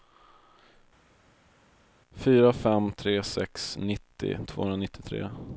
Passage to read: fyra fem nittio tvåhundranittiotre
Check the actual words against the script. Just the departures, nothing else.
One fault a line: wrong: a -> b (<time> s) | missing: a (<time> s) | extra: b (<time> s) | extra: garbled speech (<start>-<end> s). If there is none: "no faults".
extra: tre sex (2.9 s)